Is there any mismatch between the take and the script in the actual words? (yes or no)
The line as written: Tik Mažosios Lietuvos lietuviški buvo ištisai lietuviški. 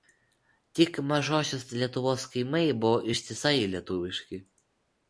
yes